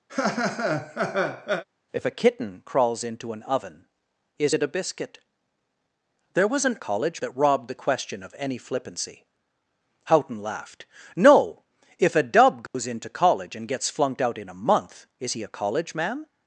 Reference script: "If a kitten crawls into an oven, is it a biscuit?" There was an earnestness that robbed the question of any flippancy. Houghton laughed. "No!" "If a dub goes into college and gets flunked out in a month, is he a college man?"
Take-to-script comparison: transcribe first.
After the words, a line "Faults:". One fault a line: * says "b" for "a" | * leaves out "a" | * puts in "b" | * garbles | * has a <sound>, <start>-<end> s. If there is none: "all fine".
"If a kitten crawls into an oven, is it a biscuit?" There was an college that robbed the question of any flippancy. Houghton laughed. "No!" "If a dub goes into college and gets flunked out in a month, is he a college man?"
Faults:
* has a laugh, 0.1-1.6 s
* says "college" for "earnestness"
* has a dropout, 12.7-12.7 s